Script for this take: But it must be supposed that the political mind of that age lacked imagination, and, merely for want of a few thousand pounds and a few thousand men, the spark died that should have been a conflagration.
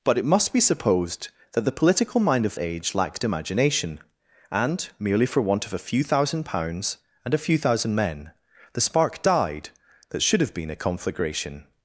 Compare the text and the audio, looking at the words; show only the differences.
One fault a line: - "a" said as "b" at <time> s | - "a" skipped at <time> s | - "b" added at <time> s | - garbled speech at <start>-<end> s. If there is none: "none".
- "that" skipped at 2.5 s